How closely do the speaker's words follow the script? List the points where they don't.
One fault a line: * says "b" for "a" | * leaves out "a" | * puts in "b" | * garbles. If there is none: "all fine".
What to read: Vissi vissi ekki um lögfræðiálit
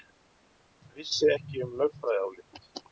* leaves out "vissi"